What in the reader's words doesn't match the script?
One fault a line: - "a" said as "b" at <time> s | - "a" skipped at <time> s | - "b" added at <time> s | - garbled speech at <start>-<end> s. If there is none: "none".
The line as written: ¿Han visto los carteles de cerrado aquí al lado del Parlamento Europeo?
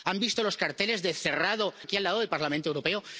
none